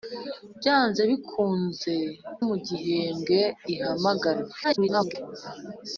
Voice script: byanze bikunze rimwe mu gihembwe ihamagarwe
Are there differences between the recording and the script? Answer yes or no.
yes